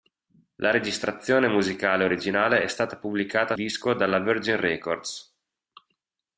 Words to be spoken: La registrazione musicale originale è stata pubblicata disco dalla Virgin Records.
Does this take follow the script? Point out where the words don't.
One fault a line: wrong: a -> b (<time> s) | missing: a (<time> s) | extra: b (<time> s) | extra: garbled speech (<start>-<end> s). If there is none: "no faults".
no faults